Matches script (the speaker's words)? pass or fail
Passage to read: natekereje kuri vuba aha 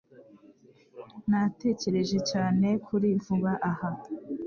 fail